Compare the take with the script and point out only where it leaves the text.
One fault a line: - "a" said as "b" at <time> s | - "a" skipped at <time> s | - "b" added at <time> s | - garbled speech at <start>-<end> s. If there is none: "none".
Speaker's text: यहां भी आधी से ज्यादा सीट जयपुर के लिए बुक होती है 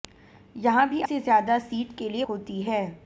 - "आधी" skipped at 1.0 s
- "जयपुर" skipped at 2.0 s
- "बुक" skipped at 2.2 s